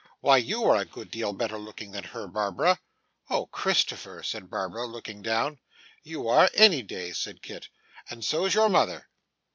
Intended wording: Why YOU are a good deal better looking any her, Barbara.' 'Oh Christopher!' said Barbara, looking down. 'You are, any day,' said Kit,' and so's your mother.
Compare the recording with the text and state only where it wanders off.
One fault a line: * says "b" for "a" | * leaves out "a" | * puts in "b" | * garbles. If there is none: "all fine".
* says "than" for "any"